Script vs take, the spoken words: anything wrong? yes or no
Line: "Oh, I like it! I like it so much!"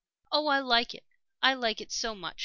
no